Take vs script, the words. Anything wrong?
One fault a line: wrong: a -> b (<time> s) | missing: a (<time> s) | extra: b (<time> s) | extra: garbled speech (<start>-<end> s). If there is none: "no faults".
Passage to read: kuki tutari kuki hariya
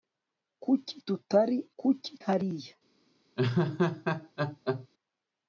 no faults